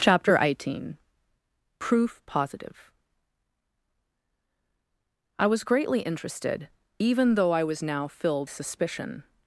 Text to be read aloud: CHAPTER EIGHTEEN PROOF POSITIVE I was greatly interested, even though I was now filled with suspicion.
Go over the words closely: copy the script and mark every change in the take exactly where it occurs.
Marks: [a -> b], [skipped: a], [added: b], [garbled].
CHAPTER EIGHTEEN PROOF POSITIVE I was greatly interested, even though I was now filled [skipped: with] suspicion.